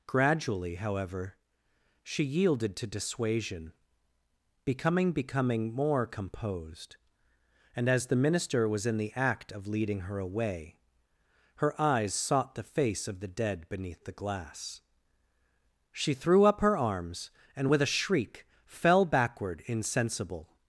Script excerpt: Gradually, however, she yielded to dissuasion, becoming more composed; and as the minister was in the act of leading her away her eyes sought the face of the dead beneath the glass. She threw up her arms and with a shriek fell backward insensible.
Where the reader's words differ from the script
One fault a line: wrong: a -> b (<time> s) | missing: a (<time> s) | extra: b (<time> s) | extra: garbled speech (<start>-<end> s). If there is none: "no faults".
extra: becoming (5.1 s)